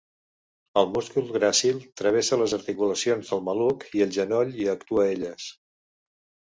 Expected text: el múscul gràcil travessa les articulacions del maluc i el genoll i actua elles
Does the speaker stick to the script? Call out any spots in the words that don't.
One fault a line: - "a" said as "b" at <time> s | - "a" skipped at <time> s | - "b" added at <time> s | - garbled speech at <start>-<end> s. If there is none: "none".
none